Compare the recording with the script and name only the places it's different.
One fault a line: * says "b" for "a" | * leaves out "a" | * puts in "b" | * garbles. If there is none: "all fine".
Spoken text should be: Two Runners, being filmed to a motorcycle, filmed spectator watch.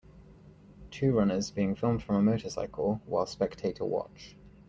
* says "from" for "to"
* says "while" for "filmed"